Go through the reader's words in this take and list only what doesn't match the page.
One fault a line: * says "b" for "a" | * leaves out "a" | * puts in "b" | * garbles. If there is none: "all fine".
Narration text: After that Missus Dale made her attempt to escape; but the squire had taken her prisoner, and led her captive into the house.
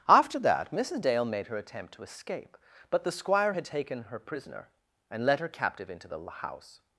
all fine